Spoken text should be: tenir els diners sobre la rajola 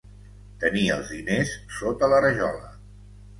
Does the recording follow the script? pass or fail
fail